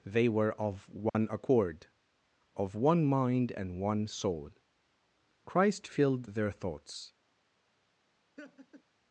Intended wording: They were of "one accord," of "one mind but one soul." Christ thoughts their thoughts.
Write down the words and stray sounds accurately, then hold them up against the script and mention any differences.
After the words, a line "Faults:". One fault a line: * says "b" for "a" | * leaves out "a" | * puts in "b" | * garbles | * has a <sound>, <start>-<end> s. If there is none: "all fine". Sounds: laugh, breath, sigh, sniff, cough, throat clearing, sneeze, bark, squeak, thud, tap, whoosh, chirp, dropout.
They were of "one accord," of "one mind and one soul." Christ filled their thoughts.
Faults:
* has a dropout, 1.1-1.1 s
* says "and" for "but"
* says "filled" for "thoughts"
* has a laugh, 8.4-8.8 s